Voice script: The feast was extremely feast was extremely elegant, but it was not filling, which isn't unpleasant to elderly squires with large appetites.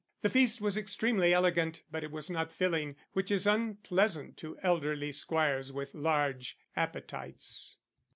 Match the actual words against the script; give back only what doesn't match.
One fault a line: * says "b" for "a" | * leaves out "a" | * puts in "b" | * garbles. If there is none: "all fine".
* leaves out "feast was extremely"
* says "is" for "isn't"